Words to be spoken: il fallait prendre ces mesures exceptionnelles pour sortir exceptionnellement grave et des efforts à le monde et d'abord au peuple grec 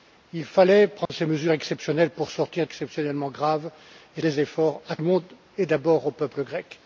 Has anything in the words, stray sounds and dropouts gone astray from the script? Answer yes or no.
yes